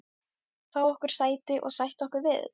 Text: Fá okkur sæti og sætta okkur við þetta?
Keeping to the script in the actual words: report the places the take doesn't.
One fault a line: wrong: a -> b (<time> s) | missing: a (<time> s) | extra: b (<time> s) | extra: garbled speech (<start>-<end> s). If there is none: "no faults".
no faults